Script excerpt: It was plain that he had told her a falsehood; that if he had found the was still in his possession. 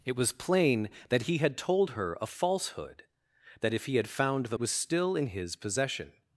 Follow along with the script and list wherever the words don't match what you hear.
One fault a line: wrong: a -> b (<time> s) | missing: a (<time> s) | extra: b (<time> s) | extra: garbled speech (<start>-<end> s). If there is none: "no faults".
no faults